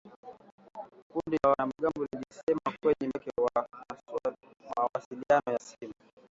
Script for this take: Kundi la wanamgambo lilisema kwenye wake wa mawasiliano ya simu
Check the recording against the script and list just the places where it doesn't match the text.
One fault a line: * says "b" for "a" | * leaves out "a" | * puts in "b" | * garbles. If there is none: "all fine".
all fine